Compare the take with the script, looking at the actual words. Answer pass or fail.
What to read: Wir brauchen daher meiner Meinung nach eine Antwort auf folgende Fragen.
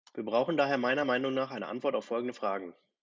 pass